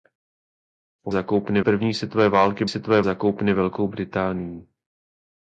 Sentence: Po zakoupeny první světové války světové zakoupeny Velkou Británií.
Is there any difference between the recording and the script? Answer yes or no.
no